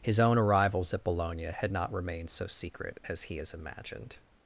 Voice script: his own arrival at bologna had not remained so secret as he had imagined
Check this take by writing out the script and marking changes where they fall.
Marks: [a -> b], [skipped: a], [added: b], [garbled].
his own [arrival -> arrivals] at bologna had not remained so secret as he [had -> has] imagined